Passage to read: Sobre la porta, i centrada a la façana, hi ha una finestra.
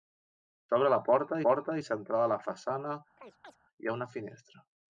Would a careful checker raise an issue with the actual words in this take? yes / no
yes